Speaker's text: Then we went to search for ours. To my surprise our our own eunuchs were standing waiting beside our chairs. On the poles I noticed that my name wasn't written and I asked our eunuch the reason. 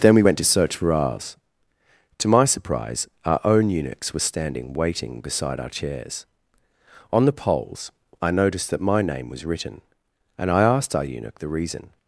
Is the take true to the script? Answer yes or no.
no